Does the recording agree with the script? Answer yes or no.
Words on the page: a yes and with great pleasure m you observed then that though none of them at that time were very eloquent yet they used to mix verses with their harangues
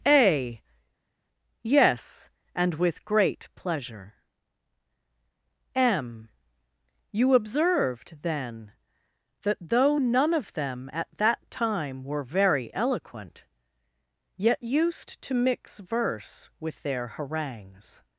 no